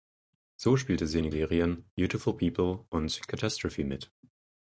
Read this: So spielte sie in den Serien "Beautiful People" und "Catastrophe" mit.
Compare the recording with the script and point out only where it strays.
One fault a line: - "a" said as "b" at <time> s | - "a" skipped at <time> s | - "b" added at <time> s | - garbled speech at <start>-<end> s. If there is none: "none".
none